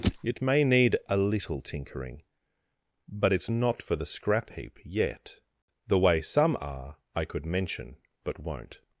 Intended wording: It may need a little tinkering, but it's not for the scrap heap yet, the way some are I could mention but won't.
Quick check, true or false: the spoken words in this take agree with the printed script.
true